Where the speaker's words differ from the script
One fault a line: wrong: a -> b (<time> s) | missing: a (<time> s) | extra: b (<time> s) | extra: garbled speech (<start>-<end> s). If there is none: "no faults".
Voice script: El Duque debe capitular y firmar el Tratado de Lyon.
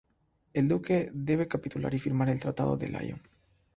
no faults